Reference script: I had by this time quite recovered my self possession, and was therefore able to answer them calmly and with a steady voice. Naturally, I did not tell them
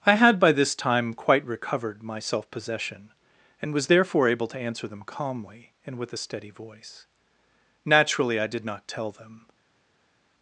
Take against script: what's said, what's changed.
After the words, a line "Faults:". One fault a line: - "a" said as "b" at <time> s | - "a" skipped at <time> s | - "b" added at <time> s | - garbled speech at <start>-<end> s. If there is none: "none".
I had by this time quite recovered my self possession, and was therefore able to answer them calmly and with a steady voice. Naturally, I did not tell them
Faults:
none